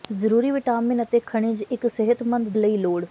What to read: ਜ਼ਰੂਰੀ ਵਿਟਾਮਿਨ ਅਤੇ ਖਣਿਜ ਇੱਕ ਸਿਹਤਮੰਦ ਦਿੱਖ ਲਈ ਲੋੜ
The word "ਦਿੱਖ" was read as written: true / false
false